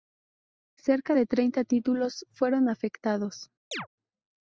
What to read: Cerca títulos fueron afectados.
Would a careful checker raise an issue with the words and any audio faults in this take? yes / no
yes